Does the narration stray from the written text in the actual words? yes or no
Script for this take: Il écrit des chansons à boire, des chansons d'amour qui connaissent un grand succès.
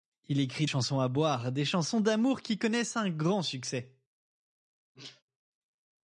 yes